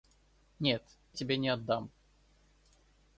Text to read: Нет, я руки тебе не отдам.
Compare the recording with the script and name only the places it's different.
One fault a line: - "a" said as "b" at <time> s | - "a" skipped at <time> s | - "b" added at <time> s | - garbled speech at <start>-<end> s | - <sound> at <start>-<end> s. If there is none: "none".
- "я руки" skipped at 1.0 s